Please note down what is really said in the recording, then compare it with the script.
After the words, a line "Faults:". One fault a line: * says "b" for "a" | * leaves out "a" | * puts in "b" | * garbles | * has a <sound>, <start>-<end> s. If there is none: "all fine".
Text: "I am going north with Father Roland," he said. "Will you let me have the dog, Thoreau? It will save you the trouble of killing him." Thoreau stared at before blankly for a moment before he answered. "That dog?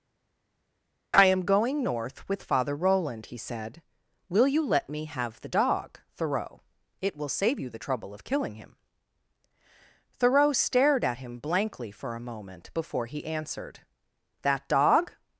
"I am going north with Father Roland," he said. "Will you let me have the dog, Thoreau? It will save you the trouble of killing him." Thoreau stared at him blankly for a moment before he answered. "That dog?
Faults:
* says "him" for "before"